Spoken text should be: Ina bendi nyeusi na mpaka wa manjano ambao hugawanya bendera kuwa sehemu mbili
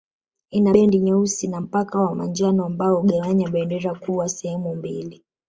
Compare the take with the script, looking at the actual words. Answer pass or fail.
pass